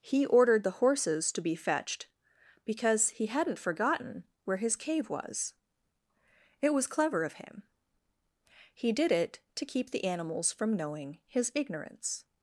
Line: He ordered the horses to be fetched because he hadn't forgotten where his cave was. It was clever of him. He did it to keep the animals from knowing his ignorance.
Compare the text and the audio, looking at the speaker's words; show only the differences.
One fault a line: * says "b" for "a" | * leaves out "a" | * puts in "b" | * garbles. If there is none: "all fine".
all fine